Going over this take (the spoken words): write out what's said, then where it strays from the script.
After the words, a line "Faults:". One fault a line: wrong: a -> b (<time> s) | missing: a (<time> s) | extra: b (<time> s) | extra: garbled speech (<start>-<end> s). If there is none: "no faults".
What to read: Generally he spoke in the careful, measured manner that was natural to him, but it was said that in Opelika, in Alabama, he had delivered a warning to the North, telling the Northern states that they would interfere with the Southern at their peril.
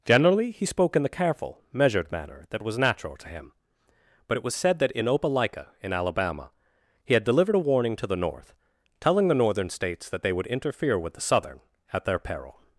Generally he spoke in the careful, measured manner that was natural to him, but it was said that in Opelika, in Alabama, he had delivered a warning to the North, telling the Northern states that they would interfere with the Southern at their peril.
Faults:
no faults